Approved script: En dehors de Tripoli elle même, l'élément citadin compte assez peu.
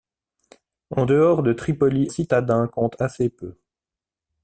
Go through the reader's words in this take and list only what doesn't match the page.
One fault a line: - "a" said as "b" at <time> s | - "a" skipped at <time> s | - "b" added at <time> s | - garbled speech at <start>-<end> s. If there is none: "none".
- "elle même l'élément" skipped at 2.1 s